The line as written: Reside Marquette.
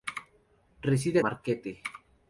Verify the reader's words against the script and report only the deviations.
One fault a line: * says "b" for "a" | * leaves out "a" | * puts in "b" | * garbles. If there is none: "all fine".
all fine